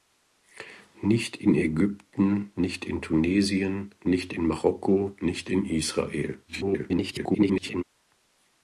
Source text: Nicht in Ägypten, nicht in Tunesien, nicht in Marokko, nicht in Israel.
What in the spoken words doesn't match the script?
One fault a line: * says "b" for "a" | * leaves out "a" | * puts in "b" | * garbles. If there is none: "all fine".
* garbles